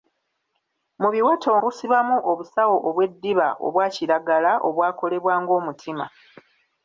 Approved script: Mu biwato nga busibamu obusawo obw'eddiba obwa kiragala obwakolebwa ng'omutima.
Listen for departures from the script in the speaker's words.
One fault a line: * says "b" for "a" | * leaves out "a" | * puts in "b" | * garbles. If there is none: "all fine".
* leaves out "nga"